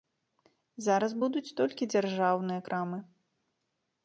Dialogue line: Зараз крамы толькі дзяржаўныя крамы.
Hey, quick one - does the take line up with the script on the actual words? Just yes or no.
no